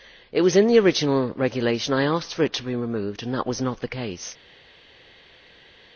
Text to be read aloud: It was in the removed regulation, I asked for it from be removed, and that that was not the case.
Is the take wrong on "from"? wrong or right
wrong